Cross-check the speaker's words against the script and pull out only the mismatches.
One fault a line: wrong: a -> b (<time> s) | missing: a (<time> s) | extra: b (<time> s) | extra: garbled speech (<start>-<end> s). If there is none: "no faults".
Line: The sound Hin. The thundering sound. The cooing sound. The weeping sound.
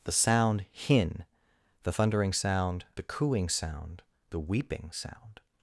no faults